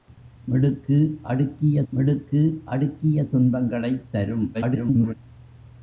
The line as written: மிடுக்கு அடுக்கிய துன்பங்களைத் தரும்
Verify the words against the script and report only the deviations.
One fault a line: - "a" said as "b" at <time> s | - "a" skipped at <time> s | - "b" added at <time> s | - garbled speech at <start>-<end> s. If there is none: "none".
- "மிடுக்கு அடுக்கிய" added at 1.9 s
- garbled speech at 4.5-5.1 s